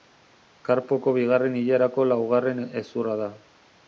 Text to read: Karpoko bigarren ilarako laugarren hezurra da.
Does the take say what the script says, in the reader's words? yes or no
yes